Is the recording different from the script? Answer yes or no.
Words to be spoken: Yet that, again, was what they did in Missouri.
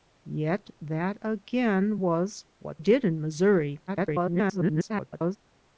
yes